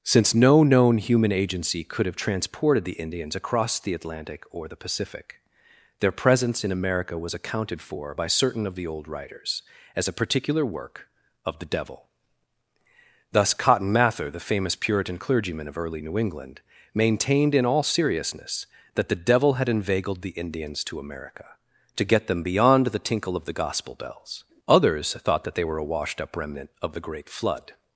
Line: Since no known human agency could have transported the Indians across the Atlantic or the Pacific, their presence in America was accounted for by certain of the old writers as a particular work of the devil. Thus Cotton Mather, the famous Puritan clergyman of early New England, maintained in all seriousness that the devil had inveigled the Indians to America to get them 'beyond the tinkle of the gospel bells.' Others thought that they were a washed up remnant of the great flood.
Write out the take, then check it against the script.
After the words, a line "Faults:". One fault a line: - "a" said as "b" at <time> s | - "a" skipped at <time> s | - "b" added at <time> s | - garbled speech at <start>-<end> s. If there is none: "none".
Since no known human agency could have transported the Indians across the Atlantic or the Pacific, their presence in America was accounted for by certain of the old writers as a particular work of the devil. Thus Cotton Mather, the famous Puritan clergyman of early New England, maintained in all seriousness that the devil had inveigled the Indians to America to get them 'beyond the tinkle of the gospel bells.' Others thought that they were a washed up remnant of the great flood.
Faults:
none